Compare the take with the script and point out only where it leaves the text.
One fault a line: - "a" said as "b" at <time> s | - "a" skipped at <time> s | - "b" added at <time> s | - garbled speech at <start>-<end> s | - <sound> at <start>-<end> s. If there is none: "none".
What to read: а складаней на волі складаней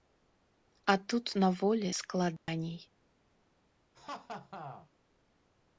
- "складаней" said as "тут" at 1.0 s
- dropout at 2.4-2.5 s
- laugh at 3.9-4.9 s